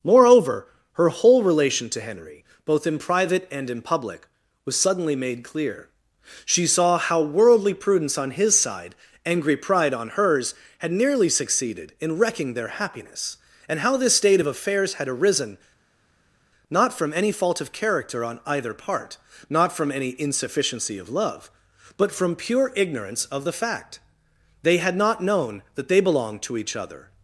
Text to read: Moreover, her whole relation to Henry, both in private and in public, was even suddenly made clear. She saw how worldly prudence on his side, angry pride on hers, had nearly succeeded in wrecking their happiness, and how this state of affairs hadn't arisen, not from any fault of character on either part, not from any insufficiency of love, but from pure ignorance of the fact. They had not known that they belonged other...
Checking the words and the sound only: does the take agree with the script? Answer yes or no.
no